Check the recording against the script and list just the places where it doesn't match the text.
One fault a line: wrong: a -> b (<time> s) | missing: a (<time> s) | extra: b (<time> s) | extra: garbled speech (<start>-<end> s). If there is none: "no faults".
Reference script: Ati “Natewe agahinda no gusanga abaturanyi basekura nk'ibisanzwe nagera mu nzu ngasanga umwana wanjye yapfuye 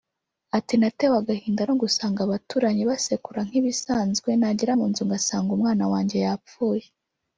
no faults